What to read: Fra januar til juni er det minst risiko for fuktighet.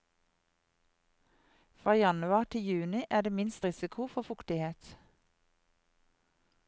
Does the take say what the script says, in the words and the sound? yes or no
yes